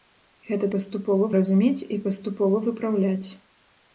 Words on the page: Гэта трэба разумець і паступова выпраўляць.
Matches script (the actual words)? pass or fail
fail